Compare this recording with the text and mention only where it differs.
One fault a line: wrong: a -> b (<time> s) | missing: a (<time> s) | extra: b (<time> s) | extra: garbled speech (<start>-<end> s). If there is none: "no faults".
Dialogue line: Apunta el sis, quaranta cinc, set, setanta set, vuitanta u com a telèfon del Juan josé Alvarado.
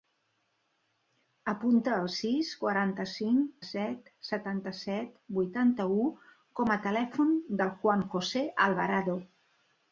no faults